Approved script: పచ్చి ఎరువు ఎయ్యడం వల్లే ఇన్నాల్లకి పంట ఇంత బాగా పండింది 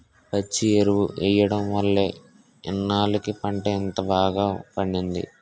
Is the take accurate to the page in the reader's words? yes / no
yes